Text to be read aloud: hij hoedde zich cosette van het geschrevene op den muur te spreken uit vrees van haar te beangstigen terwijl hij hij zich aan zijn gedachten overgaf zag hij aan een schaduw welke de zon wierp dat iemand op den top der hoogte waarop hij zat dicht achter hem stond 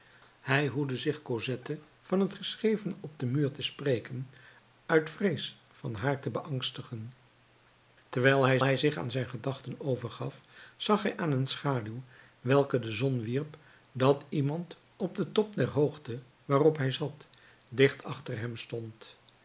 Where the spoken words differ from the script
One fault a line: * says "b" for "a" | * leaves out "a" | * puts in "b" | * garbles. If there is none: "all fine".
all fine